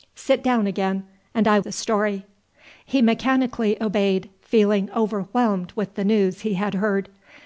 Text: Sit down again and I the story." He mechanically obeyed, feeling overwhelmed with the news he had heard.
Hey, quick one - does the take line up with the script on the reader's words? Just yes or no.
yes